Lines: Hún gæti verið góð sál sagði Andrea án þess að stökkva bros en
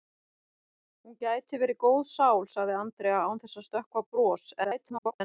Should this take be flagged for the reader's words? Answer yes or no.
yes